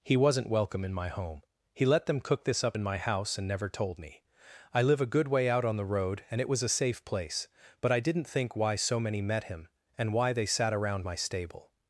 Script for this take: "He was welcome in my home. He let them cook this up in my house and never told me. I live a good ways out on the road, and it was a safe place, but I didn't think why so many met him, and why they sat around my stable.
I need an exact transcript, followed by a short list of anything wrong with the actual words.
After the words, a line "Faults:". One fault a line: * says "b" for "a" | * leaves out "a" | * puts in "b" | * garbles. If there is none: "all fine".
"He wasn't welcome in my home. He let them cook this up in my house and never told me. I live a good way out on the road, and it was a safe place, but I didn't think why so many met him, and why they sat around my stable.
Faults:
* says "wasn't" for "was"
* says "way" for "ways"